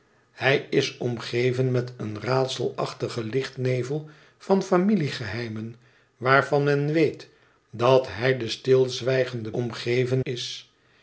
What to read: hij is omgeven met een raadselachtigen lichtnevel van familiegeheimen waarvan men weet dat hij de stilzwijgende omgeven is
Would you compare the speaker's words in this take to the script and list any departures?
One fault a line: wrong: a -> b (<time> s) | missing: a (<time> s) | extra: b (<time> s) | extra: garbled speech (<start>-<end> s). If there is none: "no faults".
no faults